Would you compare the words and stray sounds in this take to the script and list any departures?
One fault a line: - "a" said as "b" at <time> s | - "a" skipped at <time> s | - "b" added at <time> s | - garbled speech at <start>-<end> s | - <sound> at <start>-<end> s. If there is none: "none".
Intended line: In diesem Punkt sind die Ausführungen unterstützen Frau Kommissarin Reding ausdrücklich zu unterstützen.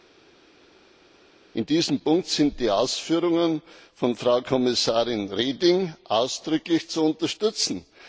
- "unterstützen" said as "von" at 3.9 s